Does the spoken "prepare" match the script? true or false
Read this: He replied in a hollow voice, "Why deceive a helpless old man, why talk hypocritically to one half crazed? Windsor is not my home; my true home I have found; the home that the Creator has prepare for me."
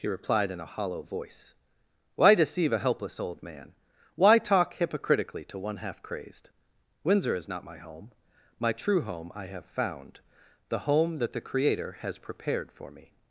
false